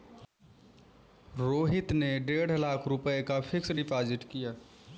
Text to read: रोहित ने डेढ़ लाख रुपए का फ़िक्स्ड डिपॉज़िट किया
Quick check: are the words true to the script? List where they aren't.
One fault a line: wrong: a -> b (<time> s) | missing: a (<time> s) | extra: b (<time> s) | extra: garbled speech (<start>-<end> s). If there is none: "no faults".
no faults